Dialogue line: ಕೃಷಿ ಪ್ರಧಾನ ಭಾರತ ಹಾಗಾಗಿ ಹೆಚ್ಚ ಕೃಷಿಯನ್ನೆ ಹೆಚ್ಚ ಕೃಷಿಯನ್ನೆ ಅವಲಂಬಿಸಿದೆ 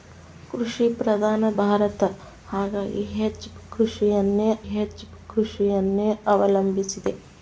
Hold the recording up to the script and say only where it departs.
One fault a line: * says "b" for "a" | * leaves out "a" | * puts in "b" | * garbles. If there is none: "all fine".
all fine